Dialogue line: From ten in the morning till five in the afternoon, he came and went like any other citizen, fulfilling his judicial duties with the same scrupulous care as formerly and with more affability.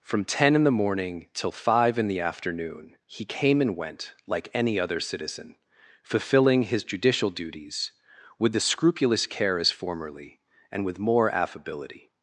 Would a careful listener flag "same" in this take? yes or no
yes